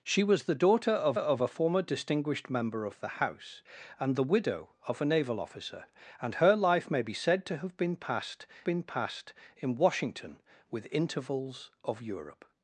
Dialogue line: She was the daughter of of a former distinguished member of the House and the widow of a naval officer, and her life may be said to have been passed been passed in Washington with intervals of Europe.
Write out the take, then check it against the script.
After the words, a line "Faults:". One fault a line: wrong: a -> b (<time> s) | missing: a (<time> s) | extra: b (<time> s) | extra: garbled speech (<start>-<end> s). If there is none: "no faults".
She was the daughter of of a former distinguished member of the House and the widow of a naval officer, and her life may be said to have been passed been passed in Washington with intervals of Europe.
Faults:
no faults